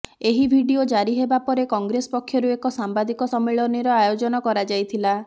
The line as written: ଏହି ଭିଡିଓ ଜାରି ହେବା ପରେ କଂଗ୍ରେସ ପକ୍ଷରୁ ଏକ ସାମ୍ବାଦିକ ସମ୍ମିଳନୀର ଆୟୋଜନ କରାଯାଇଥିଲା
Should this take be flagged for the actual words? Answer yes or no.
no